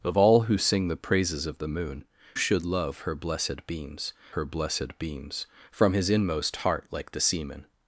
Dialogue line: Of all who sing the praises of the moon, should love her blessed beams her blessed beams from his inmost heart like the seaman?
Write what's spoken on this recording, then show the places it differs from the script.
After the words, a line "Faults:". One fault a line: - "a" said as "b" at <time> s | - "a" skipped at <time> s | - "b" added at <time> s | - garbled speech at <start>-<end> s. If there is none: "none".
Of all who sing the praises of the moon, should love her blessed beams her blessed beams from his inmost heart like the seaman?
Faults:
none